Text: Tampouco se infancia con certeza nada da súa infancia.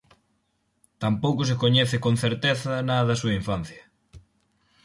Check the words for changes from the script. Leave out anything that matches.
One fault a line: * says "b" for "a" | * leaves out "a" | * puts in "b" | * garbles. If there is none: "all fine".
* says "coñece" for "infancia"